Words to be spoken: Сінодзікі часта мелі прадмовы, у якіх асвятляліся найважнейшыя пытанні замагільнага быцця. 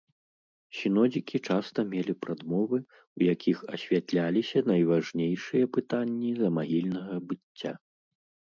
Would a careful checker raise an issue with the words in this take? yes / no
no